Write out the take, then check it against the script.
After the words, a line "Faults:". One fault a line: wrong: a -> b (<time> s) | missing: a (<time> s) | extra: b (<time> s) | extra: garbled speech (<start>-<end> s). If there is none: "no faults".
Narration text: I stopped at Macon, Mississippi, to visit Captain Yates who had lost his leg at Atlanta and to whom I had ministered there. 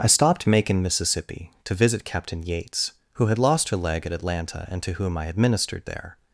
I stopped Macon, Mississippi, to visit Captain Yates who had lost her leg at Atlanta and to whom I had ministered there.
Faults:
missing: at (0.5 s)
wrong: his -> her (3.7 s)